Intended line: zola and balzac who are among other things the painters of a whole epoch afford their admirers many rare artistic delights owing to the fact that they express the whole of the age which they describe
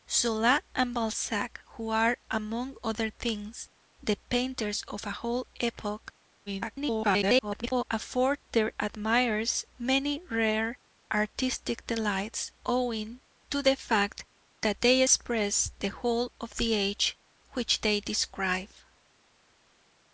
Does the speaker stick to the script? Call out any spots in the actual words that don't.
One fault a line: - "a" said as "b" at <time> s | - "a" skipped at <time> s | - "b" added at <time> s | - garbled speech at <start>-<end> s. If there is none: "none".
- garbled speech at 6.5-7.8 s